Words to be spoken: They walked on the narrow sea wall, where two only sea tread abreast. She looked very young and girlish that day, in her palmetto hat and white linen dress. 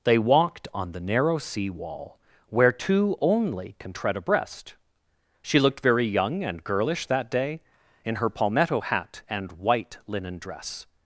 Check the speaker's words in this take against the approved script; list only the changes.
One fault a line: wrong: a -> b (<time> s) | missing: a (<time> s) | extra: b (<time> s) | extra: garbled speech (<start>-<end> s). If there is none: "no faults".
wrong: sea -> can (3.8 s)